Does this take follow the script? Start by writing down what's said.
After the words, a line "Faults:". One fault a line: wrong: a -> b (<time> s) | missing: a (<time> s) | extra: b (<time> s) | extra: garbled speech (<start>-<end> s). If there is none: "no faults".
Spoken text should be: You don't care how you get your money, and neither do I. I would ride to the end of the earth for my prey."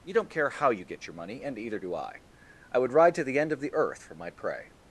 You don't care how you get your money, and either do I. I would ride to the end of the earth for my prey."
Faults:
wrong: neither -> either (1.6 s)